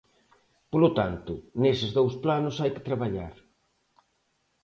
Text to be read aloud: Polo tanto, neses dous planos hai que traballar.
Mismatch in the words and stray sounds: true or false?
false